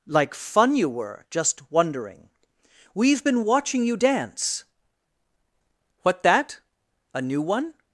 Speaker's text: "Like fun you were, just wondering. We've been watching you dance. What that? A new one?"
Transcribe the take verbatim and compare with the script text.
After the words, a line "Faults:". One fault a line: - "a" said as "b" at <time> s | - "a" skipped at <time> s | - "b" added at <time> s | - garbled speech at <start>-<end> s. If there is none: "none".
"Like fun you were, just wondering. We've been watching you dance. What that? A new one?"
Faults:
none